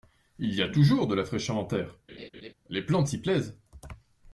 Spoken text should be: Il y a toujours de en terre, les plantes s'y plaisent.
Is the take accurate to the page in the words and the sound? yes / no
no